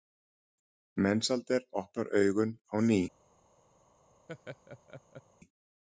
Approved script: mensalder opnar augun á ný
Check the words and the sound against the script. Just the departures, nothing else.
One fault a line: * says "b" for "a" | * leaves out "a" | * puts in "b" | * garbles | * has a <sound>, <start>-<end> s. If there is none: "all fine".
* has a laugh, 4.3-5.2 s